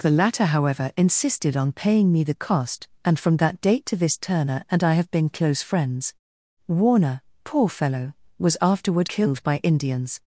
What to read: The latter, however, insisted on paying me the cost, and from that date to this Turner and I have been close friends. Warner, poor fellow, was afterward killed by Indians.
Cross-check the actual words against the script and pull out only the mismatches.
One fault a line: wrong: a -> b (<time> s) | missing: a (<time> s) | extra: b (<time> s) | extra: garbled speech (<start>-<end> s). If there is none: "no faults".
no faults